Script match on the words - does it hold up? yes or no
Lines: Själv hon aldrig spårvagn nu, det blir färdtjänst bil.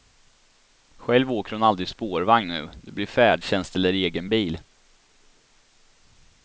no